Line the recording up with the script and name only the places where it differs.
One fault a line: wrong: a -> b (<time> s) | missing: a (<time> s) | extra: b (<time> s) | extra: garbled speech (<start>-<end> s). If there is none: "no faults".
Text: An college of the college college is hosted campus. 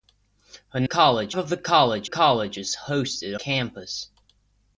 no faults